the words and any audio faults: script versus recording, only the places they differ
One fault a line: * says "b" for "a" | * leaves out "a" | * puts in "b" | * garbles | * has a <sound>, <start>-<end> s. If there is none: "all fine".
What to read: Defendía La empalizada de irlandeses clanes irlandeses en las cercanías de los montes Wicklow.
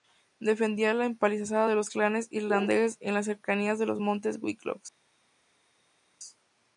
* says "los" for "irlandeses"